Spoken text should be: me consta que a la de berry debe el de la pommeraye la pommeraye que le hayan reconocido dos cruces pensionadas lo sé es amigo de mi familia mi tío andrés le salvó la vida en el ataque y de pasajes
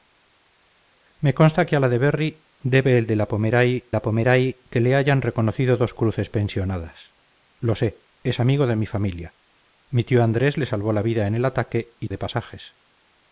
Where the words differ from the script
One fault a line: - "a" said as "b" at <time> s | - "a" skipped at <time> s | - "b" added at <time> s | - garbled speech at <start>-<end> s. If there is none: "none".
none